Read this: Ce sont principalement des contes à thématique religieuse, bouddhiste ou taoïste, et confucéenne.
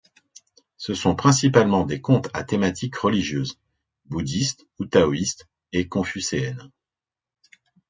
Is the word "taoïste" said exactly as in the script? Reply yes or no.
yes